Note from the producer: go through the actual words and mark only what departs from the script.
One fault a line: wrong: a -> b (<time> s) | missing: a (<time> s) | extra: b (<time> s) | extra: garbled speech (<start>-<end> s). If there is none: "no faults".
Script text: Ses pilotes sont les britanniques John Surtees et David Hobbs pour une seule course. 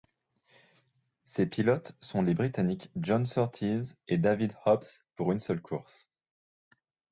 no faults